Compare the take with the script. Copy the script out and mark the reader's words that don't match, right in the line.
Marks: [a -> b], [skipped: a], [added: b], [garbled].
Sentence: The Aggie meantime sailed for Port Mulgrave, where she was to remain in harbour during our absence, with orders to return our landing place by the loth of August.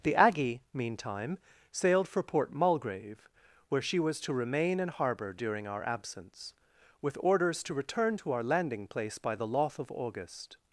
The Aggie meantime sailed for Port Mulgrave, where she was to remain in harbour during our absence, with orders to return [added: to] our landing place by the loth of August.